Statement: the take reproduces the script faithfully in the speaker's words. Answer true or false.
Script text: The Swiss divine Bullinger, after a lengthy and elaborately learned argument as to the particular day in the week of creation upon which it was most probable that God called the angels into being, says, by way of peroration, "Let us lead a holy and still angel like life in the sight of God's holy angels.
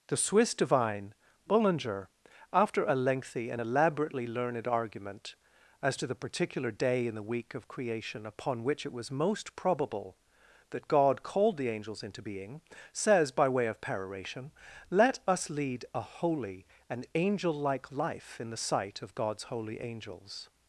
false